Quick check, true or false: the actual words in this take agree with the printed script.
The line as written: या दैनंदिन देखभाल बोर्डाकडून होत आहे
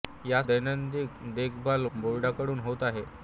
true